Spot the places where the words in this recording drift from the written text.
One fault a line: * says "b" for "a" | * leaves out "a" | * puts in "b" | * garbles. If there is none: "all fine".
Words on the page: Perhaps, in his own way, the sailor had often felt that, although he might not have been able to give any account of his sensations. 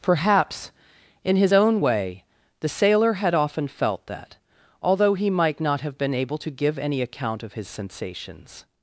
all fine